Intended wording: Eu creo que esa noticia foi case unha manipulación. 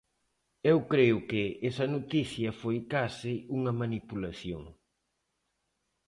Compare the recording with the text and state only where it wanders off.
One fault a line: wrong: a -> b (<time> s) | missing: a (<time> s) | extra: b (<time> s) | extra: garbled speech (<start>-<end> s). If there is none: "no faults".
no faults